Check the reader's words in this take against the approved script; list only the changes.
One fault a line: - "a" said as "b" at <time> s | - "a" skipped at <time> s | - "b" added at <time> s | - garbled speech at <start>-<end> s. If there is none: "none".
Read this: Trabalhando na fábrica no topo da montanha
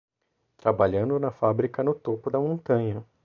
none